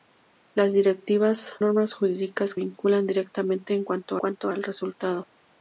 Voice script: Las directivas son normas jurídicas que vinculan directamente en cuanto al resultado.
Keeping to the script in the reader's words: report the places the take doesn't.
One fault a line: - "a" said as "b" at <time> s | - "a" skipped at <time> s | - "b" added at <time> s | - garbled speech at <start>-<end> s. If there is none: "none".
- "son" skipped at 1.5 s
- "que" skipped at 2.6 s
- "cuanto" added at 4.2 s